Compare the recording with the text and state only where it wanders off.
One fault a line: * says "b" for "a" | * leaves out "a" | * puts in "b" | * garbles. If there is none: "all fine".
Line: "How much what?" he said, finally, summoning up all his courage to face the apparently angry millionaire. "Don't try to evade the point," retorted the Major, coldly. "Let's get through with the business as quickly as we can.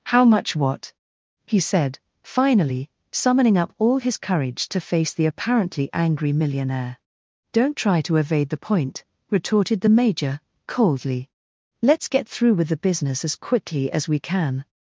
all fine